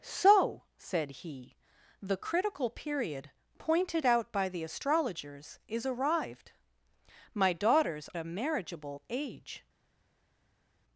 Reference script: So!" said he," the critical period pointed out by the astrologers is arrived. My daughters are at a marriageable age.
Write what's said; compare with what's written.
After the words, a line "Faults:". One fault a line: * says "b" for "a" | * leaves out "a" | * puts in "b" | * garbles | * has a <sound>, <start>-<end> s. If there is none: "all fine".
So!" said he," the critical period pointed out by the astrologers is arrived. My daughters a marriageable age.
Faults:
* leaves out "are at"